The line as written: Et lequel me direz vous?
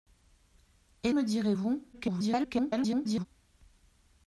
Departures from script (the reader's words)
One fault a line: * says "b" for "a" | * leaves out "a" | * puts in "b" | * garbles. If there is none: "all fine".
* leaves out "lequel"
* garbles